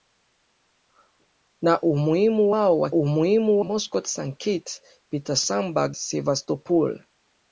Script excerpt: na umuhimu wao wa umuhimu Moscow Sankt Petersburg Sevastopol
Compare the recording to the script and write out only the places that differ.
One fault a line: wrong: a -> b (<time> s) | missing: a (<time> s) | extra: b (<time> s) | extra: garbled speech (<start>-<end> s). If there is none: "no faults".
no faults